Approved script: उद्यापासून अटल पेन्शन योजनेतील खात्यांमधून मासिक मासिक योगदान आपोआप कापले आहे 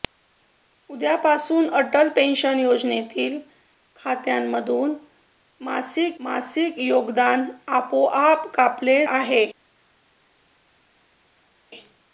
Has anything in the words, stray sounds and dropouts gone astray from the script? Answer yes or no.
no